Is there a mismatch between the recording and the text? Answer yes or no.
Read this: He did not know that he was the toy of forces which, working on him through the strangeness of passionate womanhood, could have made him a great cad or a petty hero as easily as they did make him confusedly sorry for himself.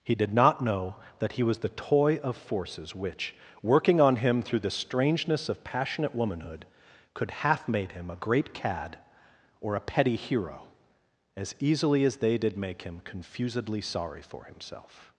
yes